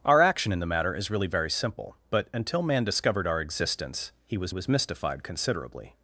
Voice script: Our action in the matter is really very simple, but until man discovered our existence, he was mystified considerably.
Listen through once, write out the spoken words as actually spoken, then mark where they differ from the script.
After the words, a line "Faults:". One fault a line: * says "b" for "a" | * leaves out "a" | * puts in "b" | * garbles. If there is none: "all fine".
Our action in the matter is really very simple, but until man discovered our existence, he was was mystified considerably.
Faults:
* puts in "was"